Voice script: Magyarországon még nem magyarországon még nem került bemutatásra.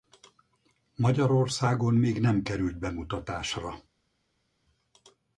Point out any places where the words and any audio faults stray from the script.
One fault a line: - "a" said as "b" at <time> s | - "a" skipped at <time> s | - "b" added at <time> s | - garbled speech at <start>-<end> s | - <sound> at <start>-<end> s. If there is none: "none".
- "magyarországon még nem" skipped at 2.4 s